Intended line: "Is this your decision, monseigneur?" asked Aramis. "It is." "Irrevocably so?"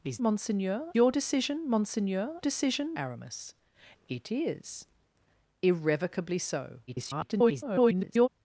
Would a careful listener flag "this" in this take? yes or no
yes